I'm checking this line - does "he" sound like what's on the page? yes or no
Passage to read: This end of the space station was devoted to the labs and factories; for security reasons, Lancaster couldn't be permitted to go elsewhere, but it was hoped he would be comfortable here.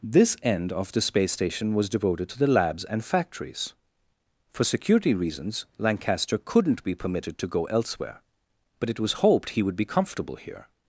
yes